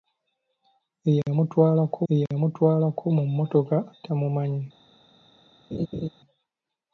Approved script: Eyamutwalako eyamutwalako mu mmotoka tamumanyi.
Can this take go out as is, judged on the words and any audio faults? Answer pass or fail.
fail